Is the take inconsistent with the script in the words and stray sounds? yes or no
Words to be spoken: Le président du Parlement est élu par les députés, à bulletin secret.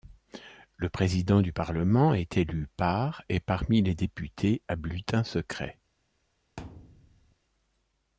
yes